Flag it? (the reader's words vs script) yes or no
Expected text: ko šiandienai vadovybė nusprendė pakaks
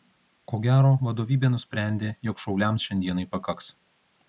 yes